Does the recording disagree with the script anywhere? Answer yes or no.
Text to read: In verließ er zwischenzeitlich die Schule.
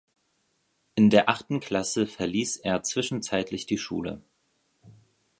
yes